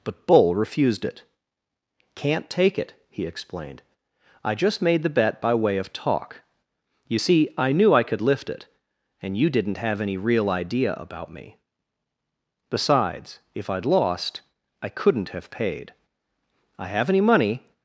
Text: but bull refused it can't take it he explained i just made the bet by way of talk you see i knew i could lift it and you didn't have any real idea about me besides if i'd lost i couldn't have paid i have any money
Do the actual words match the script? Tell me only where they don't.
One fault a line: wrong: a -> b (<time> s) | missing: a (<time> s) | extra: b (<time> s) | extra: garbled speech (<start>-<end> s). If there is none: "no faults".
no faults